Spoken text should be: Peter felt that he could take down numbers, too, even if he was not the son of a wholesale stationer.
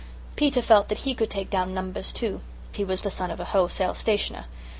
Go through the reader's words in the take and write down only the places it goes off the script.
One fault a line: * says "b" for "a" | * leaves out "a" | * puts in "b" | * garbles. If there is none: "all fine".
* leaves out "even if"
* leaves out "not"